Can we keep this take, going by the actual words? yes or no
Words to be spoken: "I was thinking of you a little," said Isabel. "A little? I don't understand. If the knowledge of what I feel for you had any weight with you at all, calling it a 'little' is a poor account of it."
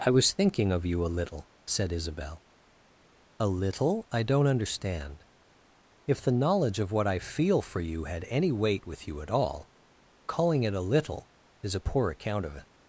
yes